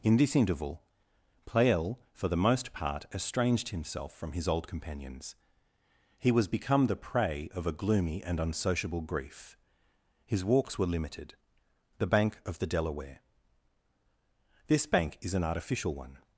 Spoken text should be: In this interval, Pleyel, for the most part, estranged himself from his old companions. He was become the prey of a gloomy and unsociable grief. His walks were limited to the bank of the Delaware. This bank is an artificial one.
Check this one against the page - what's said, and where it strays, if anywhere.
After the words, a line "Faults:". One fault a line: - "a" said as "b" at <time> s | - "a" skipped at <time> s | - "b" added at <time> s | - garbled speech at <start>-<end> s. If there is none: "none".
In this interval, Pleyel, for the most part, estranged himself from his old companions. He was become the prey of a gloomy and unsociable grief. His walks were limited the bank of the Delaware. This bank is an artificial one.
Faults:
- "to" skipped at 11.3 s